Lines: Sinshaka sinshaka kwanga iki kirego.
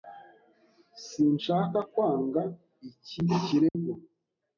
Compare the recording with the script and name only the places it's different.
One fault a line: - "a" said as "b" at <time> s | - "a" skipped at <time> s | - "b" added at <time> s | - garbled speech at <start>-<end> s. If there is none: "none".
- "sinshaka" skipped at 1.8 s